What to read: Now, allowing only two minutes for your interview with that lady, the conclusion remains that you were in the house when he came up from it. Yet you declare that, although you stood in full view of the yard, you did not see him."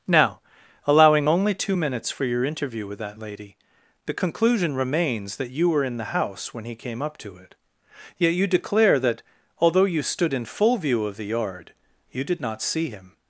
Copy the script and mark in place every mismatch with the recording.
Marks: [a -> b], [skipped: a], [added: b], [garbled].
Now, allowing only two minutes for your interview with that lady, the conclusion remains that you were in the house when he came up [from -> to] it. Yet you declare that, although you stood in full view of the yard, you did not see him."